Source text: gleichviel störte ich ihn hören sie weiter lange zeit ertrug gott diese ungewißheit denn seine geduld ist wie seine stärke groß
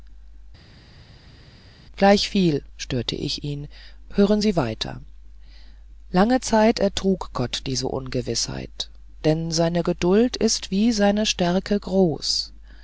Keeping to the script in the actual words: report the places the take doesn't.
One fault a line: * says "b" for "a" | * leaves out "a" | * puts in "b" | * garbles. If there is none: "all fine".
all fine